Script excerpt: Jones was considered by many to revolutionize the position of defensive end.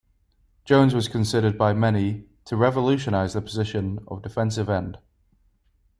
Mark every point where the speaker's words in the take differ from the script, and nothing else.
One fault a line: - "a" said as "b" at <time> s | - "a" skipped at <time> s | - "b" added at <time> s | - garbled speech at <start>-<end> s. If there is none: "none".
none